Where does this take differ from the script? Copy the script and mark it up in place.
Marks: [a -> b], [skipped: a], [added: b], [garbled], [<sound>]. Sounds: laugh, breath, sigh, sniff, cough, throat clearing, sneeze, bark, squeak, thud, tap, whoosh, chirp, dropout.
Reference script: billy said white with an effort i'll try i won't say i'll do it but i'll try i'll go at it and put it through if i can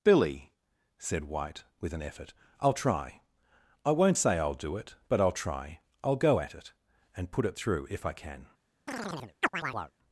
billy said white with an effort i'll try i won't say i'll do it but i'll try i'll go at it and put it through if i can [chirp]